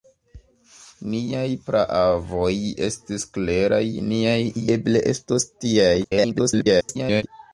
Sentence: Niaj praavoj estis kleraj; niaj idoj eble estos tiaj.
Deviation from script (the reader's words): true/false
true